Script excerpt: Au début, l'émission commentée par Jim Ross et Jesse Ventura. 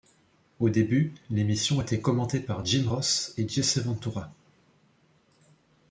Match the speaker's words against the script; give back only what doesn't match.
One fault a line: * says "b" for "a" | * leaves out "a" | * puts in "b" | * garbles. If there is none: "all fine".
* puts in "était"